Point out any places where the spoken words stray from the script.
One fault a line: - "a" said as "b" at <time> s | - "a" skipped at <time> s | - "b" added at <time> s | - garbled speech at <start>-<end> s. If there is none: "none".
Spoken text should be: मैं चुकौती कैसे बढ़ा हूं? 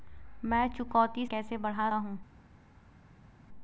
none